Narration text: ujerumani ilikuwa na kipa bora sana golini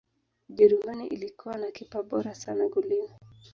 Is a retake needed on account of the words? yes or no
no